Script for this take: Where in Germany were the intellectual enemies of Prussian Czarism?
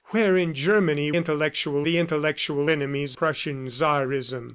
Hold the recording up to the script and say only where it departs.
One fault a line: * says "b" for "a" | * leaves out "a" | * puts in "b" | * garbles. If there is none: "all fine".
* says "intellectual" for "were"
* leaves out "of"